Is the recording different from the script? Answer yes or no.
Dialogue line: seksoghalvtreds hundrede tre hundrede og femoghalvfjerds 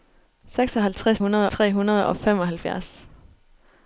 no